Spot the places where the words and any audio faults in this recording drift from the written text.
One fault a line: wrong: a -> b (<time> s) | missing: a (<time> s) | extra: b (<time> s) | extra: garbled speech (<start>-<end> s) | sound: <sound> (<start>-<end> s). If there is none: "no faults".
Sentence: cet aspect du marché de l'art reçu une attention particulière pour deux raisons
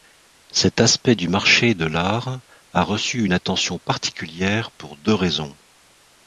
extra: a (2.7 s)